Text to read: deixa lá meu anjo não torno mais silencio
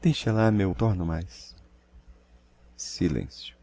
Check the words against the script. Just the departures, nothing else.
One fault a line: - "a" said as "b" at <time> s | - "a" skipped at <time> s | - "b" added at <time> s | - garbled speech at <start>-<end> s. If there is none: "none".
- "anjo não" skipped at 0.8 s